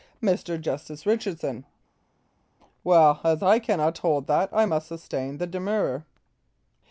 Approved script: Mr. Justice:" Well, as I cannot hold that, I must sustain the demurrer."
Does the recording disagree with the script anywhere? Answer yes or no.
yes